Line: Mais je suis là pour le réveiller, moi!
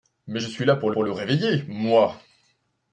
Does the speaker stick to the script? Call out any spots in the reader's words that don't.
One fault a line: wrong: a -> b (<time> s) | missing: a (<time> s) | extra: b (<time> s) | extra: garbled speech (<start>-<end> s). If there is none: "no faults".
extra: pour (0.9 s)